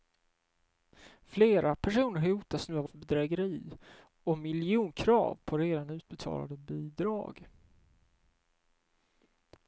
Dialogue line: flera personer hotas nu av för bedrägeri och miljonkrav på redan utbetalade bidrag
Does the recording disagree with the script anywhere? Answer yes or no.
no